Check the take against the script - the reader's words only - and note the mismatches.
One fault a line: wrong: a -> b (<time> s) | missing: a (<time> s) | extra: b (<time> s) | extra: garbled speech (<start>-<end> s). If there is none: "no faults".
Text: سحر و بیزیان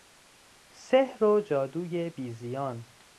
extra: جادوی (1.4 s)